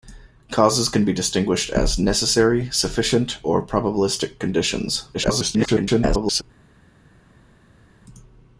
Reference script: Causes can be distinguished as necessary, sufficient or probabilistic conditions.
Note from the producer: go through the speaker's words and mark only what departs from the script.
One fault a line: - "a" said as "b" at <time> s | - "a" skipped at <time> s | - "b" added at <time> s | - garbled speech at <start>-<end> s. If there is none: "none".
- garbled speech at 5.1-6.4 s